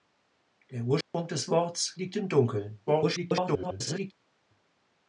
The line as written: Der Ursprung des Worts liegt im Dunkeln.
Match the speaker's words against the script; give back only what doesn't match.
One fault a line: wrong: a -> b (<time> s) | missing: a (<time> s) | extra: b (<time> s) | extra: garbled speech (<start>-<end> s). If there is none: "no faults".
extra: garbled speech (2.9-4.1 s)